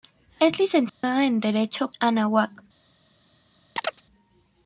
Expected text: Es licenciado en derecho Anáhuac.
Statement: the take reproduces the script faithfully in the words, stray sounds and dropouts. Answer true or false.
false